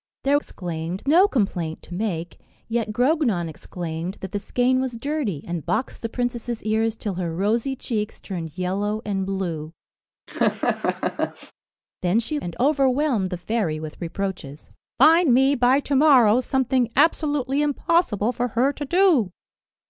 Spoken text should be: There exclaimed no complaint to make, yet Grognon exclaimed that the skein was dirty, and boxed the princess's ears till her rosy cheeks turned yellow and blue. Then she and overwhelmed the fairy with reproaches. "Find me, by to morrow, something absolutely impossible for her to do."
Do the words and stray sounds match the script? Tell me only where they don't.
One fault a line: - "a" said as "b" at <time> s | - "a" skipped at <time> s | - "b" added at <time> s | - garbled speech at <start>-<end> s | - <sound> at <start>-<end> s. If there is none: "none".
- laugh at 10.3-11.5 s